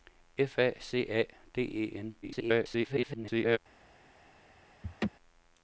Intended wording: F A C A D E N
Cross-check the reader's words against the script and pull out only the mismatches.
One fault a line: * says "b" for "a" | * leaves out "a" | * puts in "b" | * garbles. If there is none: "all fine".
* garbles